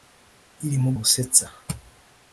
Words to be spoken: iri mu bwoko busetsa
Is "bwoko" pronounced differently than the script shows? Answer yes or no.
yes